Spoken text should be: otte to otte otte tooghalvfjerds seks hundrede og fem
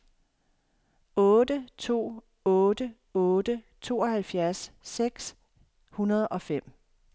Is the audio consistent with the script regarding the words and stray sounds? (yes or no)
yes